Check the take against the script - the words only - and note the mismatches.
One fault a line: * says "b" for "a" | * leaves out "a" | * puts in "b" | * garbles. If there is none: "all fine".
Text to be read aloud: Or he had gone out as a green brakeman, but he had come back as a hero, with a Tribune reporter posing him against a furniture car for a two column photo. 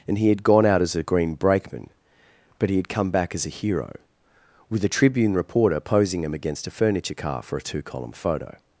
* says "And" for "Or"